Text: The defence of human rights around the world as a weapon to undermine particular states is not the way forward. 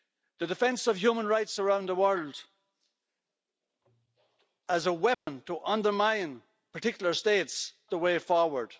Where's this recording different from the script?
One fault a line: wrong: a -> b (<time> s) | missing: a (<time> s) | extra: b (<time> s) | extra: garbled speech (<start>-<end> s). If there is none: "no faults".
missing: is not (7.7 s)